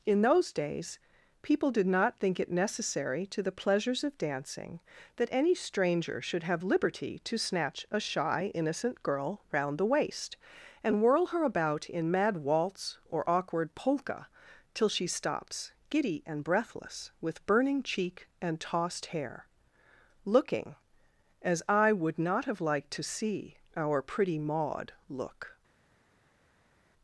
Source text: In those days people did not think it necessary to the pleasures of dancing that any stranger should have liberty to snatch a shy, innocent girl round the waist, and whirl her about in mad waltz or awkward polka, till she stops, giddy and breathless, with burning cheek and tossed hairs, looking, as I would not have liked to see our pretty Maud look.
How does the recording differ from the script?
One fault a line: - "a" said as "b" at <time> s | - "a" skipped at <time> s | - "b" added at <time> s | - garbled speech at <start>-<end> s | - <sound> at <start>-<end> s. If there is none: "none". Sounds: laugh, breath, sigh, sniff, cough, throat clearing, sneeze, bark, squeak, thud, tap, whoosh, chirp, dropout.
- "hairs" said as "hair" at 19.1 s